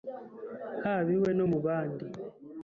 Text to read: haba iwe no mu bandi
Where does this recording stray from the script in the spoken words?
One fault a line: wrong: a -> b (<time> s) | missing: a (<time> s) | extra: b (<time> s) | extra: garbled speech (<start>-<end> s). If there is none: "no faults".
no faults